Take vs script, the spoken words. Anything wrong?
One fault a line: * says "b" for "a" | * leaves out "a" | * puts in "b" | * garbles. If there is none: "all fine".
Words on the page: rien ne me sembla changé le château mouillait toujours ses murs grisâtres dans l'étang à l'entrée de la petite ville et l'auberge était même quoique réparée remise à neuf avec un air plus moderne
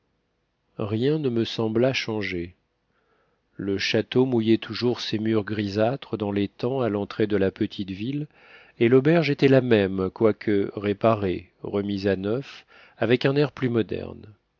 * puts in "la"